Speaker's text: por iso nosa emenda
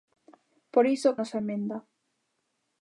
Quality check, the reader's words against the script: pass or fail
pass